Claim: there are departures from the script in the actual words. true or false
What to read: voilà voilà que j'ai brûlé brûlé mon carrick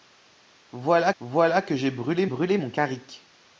false